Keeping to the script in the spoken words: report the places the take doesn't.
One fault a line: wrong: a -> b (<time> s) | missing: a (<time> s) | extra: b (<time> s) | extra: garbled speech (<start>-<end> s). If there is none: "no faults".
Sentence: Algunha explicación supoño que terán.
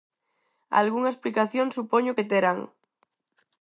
no faults